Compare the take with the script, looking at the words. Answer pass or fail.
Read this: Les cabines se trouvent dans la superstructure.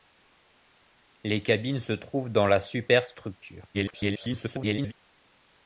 fail